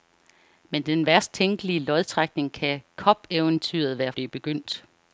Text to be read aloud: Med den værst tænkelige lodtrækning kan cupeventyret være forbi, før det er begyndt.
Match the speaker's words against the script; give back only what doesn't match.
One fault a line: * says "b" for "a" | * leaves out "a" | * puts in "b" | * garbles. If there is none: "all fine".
* leaves out "forbi før"